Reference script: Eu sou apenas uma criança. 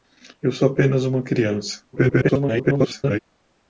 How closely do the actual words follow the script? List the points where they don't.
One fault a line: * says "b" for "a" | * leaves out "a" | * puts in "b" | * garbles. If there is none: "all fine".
* garbles